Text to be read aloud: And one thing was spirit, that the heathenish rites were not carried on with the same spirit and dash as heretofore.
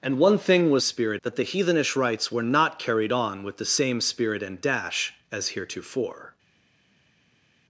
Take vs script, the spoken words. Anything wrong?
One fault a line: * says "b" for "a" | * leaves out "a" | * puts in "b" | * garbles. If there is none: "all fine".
all fine